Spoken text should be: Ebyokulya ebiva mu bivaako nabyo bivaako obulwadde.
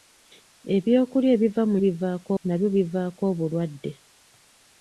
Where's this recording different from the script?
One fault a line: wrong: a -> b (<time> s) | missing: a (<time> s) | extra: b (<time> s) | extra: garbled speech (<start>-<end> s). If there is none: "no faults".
no faults